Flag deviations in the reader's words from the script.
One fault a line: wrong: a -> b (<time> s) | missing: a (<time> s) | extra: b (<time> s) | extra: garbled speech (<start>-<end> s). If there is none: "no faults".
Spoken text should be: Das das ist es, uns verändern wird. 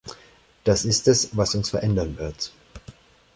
missing: das (0.8 s)
extra: was (1.3 s)